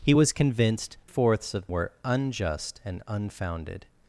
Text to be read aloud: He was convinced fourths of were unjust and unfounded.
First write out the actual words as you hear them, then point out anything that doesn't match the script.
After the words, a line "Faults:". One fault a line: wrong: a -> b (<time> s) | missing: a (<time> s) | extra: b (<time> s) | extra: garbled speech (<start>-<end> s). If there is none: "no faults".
He was convinced fourths of were unjust and unfounded.
Faults:
no faults